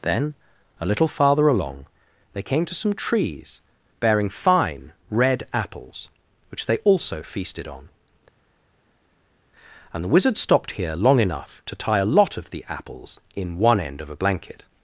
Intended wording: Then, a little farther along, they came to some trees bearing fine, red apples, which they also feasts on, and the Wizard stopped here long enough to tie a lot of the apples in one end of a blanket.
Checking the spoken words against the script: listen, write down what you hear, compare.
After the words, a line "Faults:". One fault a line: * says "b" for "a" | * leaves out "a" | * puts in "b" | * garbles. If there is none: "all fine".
Then, a little farther along, they came to some trees bearing fine, red apples, which they also feasted on, and the Wizard stopped here long enough to tie a lot of the apples in one end of a blanket.
Faults:
* says "feasted" for "feasts"